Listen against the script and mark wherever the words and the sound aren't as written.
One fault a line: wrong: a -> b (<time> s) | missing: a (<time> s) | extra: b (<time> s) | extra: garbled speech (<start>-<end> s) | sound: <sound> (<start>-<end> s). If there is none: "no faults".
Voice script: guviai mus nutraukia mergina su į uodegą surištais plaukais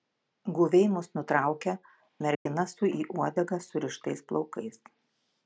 sound: dropout (2.3-2.5 s)